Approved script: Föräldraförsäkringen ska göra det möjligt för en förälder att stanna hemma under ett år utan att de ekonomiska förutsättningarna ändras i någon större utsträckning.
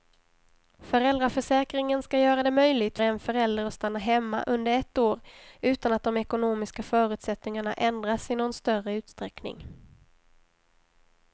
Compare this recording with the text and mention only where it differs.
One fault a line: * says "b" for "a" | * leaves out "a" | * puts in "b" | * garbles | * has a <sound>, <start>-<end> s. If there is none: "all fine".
* leaves out "för"